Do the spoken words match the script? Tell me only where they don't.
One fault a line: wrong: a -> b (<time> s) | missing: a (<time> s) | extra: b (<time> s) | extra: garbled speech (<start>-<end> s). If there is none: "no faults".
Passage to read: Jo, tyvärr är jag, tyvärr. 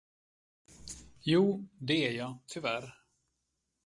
wrong: tyvärr -> det (1.7 s)